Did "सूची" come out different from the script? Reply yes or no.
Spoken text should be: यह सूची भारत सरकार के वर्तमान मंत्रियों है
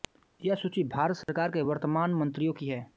no